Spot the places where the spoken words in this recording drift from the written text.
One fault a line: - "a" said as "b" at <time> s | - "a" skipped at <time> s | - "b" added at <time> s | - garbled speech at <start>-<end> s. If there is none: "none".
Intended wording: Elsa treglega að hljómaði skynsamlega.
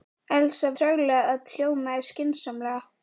none